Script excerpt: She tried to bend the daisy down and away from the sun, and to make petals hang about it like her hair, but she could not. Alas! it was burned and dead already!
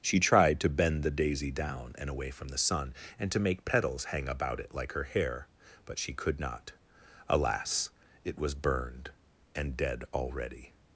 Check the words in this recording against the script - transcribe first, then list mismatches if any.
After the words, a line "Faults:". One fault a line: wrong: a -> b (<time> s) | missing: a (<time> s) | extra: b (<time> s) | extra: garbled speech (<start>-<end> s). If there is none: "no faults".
She tried to bend the daisy down and away from the sun, and to make petals hang about it like her hair, but she could not. Alas! it was burned and dead already!
Faults:
no faults